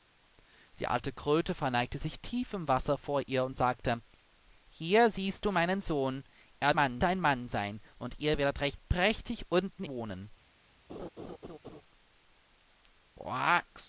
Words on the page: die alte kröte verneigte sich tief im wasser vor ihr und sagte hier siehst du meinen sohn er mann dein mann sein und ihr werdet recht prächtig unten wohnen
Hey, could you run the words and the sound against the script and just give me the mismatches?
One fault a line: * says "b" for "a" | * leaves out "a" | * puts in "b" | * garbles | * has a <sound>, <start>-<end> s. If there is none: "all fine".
* has a laugh, 10.9-11.8 s